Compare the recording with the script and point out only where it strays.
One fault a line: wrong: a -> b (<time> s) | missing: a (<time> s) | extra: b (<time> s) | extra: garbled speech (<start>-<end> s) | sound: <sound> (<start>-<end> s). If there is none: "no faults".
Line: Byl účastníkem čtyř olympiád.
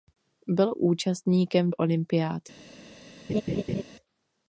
missing: čtyř (1.7 s)
sound: laugh (3.3-3.8 s)